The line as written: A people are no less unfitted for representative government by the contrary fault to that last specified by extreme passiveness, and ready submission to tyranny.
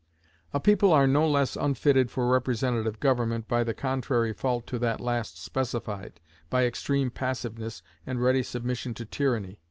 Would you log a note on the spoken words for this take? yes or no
no